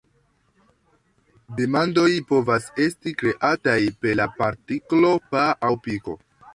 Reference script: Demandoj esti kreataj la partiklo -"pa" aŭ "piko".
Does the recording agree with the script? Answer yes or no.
no